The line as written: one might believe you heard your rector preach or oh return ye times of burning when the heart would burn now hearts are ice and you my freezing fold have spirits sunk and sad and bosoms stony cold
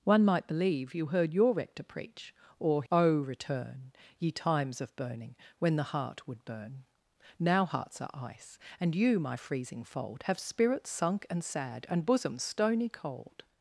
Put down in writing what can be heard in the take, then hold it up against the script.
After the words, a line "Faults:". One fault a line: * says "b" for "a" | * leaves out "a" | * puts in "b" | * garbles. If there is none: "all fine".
one might believe you heard your rector preach or oh return ye times of burning when the heart would burn now hearts are ice and you my freezing fold have spirits sunk and sad and bosoms stony cold
Faults:
all fine